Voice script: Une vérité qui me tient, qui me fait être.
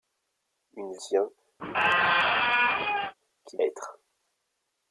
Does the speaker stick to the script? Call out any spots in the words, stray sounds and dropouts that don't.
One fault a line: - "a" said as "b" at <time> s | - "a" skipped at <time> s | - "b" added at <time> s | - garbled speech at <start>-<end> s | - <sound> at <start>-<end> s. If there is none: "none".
- "vérité qui me" skipped at 0.9 s
- squeak at 1.6-3.1 s
- "me fait" skipped at 3.6 s